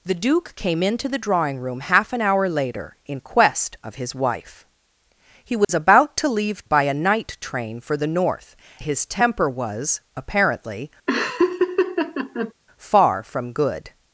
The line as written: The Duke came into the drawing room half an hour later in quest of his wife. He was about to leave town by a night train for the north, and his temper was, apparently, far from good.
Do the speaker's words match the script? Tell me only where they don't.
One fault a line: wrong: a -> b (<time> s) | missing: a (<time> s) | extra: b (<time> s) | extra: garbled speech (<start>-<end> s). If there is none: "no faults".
missing: town (6.7 s)
missing: and (8.5 s)